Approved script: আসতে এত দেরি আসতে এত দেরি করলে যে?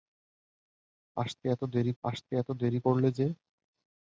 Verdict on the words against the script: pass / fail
pass